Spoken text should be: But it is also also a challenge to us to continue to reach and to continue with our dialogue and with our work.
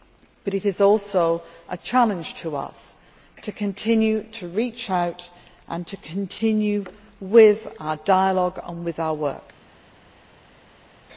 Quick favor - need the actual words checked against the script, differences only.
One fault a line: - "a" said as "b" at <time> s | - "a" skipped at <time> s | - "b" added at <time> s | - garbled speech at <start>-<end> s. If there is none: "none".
- "also" skipped at 1.4 s
- "out" added at 4.9 s